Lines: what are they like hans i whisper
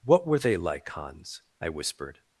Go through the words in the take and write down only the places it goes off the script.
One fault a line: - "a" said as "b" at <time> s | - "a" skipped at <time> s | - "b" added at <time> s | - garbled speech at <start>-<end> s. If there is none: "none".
- "are" said as "were" at 0.2 s
- "whisper" said as "whispered" at 1.7 s